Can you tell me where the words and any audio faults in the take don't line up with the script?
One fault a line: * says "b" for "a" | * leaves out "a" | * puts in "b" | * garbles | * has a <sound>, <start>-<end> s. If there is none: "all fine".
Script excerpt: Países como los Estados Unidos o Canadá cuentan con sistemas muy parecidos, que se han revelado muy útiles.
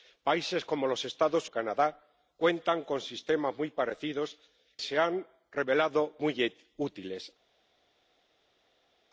* leaves out "Unidos"
* leaves out "que"